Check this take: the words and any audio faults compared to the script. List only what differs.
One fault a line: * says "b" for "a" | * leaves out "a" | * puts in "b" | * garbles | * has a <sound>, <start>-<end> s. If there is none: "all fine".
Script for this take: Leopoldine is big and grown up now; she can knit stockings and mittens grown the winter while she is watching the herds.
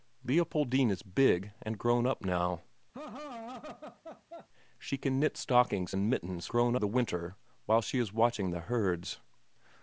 * has a laugh, 2.9-4.5 s